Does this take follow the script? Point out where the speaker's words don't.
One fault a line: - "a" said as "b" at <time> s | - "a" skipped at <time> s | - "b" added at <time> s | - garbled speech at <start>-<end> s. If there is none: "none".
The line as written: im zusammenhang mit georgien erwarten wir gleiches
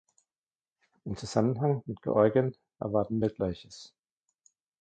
none